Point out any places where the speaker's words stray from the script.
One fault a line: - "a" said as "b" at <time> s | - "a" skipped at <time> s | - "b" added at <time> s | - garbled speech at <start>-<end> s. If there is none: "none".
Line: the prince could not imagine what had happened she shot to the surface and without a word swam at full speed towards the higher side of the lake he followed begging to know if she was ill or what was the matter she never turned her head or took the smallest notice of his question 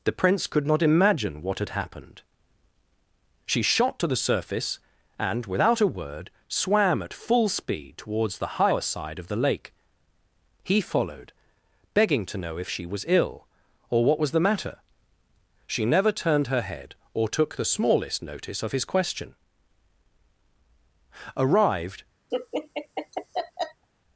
- "arrived" added at 21.3 s